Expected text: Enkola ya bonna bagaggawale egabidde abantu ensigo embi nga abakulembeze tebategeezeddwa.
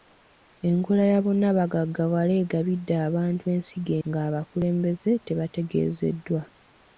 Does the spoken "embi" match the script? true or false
false